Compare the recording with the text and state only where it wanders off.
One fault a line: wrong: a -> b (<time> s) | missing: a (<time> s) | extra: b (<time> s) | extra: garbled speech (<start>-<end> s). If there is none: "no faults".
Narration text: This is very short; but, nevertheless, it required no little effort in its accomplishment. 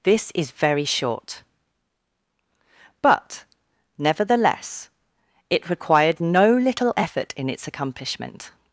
no faults